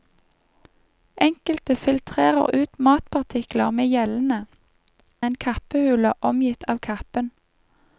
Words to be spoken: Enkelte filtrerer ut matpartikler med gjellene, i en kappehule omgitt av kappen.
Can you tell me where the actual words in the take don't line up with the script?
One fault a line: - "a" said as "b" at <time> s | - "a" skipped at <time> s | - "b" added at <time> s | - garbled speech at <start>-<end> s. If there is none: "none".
none